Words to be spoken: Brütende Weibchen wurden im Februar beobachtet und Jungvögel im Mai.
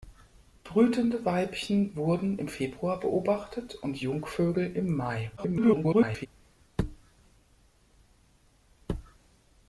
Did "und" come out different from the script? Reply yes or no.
no